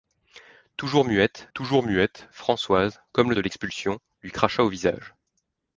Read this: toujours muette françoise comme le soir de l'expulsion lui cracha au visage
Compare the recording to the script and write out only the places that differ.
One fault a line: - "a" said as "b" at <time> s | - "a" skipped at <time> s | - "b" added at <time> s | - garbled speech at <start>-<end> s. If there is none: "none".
- "toujours muette" added at 1.5 s
- "soir" skipped at 3.3 s